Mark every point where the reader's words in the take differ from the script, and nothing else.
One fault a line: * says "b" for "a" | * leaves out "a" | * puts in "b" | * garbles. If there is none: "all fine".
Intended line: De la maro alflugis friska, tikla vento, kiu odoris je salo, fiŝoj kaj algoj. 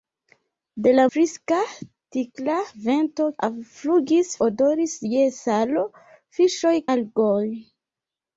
* leaves out "maro alflugis"
* says "alflugis" for "kiu"
* leaves out "kaj"